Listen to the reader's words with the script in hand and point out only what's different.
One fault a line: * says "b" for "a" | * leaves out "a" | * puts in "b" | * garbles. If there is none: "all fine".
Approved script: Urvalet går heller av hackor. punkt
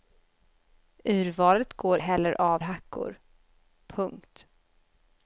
all fine